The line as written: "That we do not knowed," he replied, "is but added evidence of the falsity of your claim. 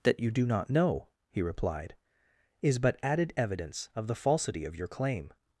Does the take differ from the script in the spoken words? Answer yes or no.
yes